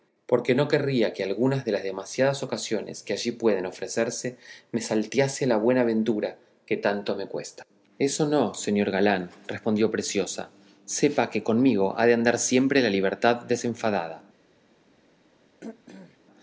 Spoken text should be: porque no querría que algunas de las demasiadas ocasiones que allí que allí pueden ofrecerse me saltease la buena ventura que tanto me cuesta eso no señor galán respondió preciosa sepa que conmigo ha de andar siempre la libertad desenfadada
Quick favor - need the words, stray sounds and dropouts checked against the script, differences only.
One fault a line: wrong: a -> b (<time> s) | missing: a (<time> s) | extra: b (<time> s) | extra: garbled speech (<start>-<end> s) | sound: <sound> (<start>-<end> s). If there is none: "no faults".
missing: que allí (3.3 s)
sound: throat clearing (15.6-16.2 s)